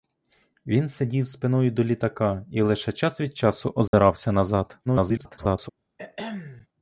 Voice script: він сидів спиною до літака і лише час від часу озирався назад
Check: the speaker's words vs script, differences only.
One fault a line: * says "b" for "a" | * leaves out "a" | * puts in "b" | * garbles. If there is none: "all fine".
* garbles